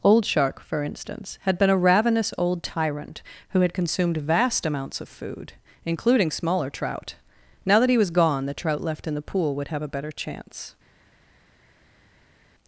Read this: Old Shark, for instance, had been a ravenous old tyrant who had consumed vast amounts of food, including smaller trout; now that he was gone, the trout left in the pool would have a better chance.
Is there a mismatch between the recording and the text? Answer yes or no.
no